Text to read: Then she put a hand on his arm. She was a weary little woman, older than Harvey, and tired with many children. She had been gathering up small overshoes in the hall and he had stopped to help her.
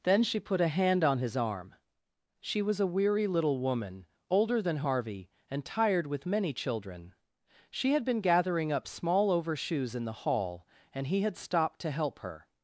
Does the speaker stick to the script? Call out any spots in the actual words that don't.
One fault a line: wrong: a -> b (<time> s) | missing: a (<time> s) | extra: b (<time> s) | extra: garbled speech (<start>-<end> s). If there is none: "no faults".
no faults